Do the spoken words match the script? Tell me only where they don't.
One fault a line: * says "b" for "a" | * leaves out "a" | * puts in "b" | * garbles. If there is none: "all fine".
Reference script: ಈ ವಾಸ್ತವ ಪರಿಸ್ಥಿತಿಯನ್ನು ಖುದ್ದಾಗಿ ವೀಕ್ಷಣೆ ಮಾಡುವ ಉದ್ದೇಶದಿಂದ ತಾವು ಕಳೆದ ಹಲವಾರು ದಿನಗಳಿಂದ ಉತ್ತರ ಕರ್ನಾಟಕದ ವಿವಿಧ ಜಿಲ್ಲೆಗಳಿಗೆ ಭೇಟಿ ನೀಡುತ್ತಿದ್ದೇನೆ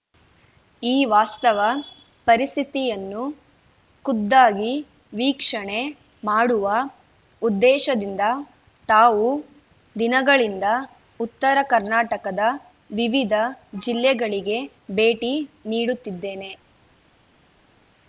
* leaves out "ಕಳೆದ ಹಲವಾರು"